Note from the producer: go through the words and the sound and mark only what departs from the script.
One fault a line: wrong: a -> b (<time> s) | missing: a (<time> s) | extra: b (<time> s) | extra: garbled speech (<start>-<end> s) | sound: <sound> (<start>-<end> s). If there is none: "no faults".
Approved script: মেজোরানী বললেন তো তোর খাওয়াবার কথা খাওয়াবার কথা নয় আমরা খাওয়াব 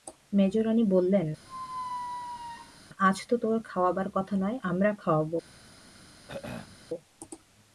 sound: squeak (1.5-2.8 s)
extra: আজ (3.0 s)
missing: খাওয়াবার কথা (4.3 s)
sound: throat clearing (6.3-6.8 s)